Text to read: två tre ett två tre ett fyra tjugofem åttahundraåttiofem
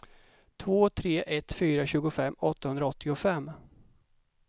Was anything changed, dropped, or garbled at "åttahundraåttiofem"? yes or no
no